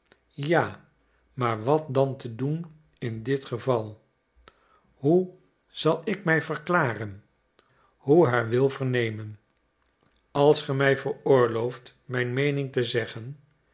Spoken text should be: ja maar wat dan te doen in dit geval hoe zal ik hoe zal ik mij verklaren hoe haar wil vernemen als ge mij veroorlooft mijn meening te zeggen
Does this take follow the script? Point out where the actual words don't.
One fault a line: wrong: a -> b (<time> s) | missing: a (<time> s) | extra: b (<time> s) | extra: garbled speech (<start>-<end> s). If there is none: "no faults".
missing: hoe zal ik (6.2 s)